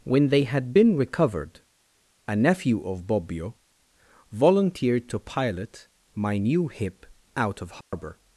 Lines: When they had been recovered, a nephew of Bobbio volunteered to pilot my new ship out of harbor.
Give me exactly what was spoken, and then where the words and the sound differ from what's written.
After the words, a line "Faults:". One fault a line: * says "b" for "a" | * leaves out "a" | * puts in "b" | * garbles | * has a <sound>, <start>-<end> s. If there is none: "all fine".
When they had been recovered, a nephew of Bobbio volunteered to pilot my new hip out of harbor.
Faults:
* says "hip" for "ship"
* has a dropout, 7.8-7.9 s